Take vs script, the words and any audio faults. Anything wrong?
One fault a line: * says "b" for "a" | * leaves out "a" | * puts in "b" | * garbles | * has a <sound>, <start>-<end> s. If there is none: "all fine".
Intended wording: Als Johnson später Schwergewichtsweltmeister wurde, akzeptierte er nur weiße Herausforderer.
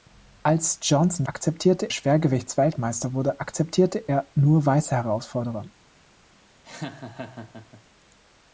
* says "akzeptierte" for "später"
* has a laugh, 6.6-7.8 s